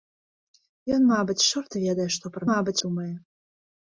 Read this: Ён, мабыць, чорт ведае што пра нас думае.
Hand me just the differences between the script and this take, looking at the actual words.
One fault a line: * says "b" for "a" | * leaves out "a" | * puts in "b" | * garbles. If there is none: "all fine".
* says "мабыць" for "нас"